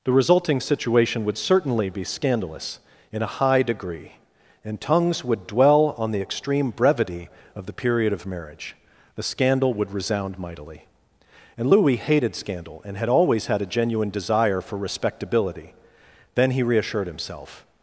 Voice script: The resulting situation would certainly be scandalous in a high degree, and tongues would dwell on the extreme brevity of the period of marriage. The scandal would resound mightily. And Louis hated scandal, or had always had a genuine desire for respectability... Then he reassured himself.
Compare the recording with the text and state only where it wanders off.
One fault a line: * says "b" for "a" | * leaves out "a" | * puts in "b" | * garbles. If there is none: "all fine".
* says "and" for "or"